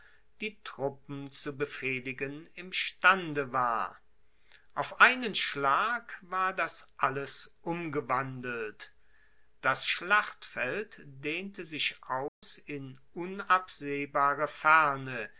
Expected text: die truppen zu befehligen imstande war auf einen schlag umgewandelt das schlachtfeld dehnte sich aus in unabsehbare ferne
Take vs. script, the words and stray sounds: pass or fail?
fail